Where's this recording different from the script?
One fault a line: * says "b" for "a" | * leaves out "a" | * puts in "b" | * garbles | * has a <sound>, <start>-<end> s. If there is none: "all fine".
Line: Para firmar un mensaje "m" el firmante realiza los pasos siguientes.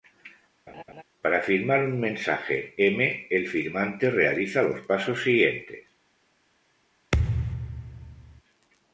* has a laugh, 0.7-1.0 s
* has a thud, 7.1-8.4 s